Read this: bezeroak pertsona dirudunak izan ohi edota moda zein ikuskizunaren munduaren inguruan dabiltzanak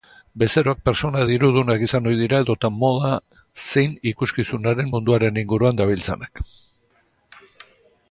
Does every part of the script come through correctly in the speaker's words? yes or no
no